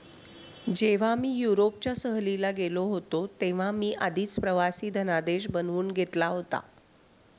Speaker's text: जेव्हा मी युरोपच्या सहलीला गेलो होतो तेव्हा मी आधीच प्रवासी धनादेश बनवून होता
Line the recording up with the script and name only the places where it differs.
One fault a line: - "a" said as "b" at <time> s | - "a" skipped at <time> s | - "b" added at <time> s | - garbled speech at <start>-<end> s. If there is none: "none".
- "घेतला" added at 5.9 s